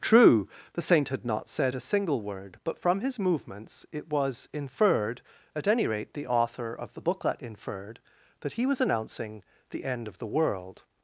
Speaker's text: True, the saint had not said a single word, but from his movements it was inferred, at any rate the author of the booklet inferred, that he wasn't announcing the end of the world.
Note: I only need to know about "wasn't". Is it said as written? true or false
false